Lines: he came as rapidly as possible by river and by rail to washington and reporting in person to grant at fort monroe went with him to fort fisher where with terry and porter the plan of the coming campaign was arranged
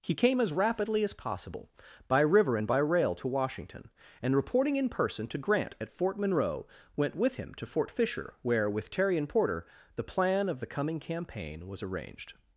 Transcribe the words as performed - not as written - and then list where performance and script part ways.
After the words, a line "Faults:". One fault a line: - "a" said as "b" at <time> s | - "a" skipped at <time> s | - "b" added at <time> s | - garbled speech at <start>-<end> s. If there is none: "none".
he came as rapidly as possible by river and by rail to washington and reporting in person to grant at fort monroe went with him to fort fisher where with terry and porter the plan of the coming campaign was arranged
Faults:
none